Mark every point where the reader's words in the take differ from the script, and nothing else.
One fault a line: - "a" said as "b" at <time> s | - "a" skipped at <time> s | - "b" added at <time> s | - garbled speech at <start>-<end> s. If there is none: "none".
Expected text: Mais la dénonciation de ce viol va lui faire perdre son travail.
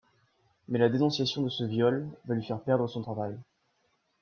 none